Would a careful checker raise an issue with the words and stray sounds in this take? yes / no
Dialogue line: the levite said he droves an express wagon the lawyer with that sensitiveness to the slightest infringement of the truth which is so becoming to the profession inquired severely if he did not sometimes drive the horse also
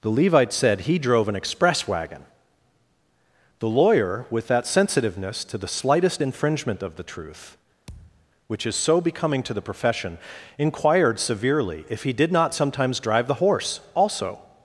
yes